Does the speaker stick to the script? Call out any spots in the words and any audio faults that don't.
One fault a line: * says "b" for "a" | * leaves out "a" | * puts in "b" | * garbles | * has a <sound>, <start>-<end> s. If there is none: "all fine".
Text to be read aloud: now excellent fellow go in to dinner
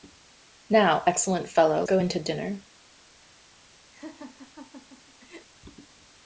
* has a laugh, 3.9-5.5 s